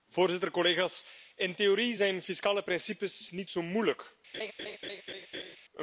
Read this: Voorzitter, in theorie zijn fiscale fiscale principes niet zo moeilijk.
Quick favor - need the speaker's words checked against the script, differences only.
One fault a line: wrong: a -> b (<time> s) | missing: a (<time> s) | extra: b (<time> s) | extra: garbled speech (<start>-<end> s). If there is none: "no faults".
extra: collega's (0.5 s)
missing: fiscale (2.6 s)